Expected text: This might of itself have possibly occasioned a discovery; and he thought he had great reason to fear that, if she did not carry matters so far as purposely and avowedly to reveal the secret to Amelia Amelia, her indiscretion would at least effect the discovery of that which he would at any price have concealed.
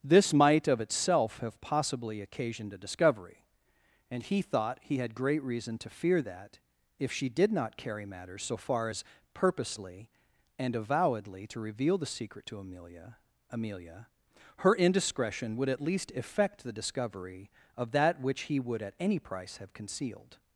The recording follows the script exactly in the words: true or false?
true